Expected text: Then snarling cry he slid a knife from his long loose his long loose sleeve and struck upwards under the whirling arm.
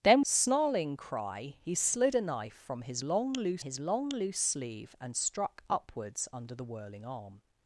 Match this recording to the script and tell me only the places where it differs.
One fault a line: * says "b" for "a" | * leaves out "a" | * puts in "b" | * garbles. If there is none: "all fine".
all fine